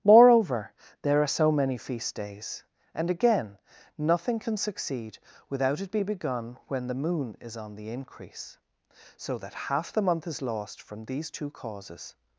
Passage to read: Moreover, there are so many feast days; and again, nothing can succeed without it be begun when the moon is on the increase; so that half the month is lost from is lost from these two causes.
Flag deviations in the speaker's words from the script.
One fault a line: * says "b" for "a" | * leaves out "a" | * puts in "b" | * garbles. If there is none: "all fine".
* leaves out "is lost from"